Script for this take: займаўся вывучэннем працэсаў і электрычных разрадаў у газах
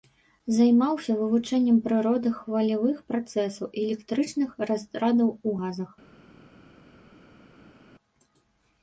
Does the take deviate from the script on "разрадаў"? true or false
false